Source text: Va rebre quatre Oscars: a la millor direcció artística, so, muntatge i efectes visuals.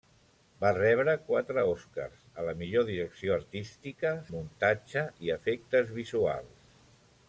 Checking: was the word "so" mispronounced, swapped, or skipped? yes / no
yes